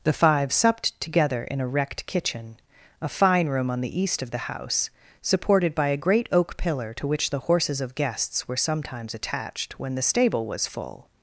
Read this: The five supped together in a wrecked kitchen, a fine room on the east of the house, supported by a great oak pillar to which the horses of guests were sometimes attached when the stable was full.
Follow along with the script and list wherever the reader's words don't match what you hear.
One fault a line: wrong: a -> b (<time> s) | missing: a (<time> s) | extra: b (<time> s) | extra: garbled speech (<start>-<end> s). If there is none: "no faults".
no faults